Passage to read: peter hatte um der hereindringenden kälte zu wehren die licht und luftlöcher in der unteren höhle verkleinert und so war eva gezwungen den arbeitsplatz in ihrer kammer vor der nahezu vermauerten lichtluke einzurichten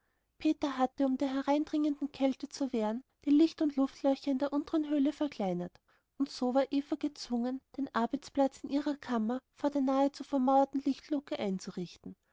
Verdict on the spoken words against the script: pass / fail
pass